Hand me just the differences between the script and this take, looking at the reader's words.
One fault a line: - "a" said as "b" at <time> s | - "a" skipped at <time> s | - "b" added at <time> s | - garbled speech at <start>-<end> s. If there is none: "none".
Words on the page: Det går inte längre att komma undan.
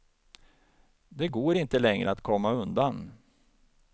none